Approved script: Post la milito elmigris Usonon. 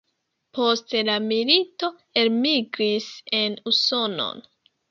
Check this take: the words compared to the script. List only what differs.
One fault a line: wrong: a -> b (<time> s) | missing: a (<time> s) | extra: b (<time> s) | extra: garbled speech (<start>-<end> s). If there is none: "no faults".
extra: en (3.4 s)